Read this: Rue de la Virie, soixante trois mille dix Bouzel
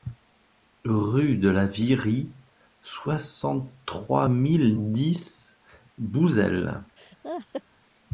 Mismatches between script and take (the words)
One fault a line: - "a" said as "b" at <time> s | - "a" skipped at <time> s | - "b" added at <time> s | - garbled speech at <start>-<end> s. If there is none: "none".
none